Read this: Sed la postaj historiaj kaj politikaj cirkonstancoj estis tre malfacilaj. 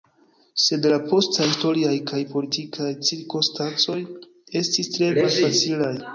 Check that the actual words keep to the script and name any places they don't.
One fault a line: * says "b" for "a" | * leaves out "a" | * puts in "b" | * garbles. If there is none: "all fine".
all fine